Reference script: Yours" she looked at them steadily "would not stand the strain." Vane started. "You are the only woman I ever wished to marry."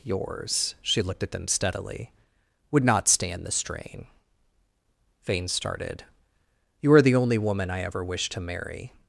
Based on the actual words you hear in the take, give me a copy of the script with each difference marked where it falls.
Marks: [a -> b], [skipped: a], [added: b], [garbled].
Yours" she looked at them steadily "would not stand the strain." Vane started. "You are the only woman I ever wished to marry."